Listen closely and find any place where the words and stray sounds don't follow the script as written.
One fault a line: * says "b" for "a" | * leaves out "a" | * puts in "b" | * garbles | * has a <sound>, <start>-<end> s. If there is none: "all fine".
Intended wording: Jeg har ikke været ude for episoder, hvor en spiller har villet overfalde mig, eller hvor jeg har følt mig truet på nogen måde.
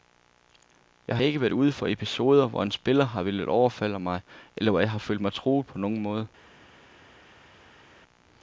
all fine